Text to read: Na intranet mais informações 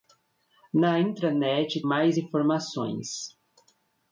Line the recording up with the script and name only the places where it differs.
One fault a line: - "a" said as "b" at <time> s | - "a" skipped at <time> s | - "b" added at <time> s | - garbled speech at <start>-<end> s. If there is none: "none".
none